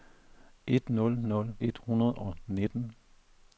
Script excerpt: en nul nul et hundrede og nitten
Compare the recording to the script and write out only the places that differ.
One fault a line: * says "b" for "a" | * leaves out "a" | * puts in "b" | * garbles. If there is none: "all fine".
all fine